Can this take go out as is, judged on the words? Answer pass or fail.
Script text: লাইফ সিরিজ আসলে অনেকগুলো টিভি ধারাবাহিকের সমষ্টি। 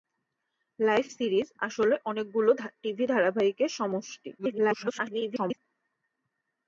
fail